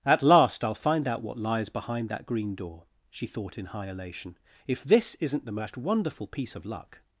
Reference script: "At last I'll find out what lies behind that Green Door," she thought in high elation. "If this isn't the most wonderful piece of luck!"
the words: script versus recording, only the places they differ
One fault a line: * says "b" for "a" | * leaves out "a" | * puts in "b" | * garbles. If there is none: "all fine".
all fine